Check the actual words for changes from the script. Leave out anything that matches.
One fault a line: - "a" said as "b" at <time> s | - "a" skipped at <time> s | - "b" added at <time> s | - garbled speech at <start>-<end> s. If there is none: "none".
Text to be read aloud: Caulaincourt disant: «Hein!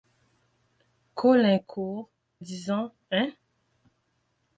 none